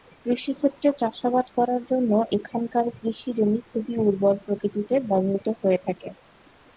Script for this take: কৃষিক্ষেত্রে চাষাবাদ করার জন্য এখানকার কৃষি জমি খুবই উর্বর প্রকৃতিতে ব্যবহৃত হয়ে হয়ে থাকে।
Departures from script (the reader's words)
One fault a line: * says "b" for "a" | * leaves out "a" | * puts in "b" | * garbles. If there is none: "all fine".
* leaves out "হয়ে"